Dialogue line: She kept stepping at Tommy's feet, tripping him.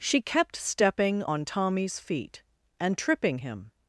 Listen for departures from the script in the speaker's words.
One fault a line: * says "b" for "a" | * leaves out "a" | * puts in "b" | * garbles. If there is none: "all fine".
* says "on" for "at"
* puts in "and"